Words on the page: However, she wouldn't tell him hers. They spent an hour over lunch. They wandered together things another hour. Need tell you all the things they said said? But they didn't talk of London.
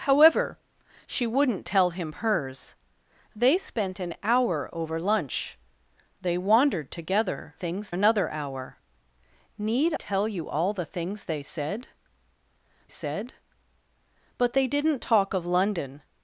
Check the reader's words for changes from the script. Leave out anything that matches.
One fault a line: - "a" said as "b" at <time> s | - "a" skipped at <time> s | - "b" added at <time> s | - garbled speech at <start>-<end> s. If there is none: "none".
none